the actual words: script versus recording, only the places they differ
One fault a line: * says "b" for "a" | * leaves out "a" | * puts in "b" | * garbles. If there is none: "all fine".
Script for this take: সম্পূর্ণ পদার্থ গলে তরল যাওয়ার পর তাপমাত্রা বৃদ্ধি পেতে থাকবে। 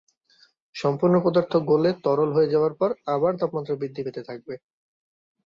* puts in "হয়ে"
* puts in "আবার"